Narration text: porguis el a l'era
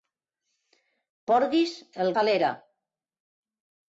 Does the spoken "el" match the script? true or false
true